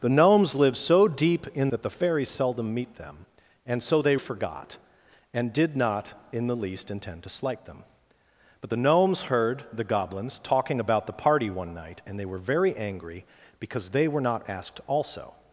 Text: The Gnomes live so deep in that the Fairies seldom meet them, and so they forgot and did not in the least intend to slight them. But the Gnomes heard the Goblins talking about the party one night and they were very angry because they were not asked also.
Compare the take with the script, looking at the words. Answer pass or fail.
pass